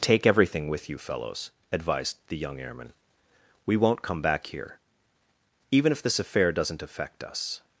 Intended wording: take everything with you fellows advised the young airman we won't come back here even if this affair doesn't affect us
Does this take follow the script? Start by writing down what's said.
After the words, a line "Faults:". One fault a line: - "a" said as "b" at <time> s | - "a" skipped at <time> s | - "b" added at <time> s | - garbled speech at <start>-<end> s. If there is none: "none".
take everything with you fellows advised the young airman we won't come back here even if this affair doesn't affect us
Faults:
none